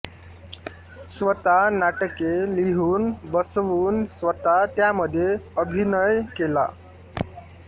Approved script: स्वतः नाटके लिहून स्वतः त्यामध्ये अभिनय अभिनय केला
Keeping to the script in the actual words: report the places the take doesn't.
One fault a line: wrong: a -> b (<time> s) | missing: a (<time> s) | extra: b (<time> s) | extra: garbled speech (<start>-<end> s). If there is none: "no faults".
extra: बसवून (3.3 s)
missing: अभिनय (6.2 s)